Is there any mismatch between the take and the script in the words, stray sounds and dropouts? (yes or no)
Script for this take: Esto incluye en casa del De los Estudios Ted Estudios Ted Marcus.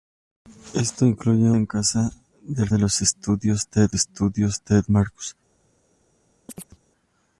yes